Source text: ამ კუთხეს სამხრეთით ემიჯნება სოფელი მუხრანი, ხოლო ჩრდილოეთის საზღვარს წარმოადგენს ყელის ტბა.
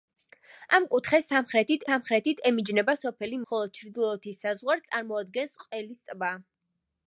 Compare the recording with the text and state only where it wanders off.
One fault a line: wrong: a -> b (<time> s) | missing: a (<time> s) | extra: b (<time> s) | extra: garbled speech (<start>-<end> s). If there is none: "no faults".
extra: სამხრეთით (1.9 s)
missing: მუხრანი (3.4 s)